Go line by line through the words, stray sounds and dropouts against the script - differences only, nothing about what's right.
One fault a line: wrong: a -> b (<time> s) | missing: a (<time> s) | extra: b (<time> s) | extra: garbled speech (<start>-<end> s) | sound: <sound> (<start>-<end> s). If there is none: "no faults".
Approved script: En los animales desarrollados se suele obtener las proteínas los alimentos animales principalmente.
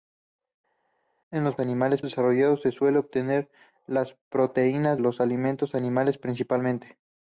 no faults